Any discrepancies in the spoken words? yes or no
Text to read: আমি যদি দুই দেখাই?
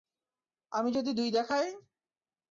no